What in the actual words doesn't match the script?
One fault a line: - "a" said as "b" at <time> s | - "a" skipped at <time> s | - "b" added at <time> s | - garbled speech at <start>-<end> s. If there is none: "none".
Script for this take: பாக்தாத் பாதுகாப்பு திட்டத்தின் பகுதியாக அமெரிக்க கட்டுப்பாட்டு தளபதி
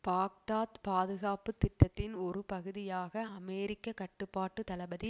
- "ஒரு" added at 2.2 s